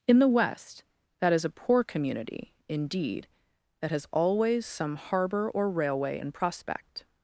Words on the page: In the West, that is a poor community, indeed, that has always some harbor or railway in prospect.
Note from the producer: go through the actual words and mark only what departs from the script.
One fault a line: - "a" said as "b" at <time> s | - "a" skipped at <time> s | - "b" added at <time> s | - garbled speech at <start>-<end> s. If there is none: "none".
none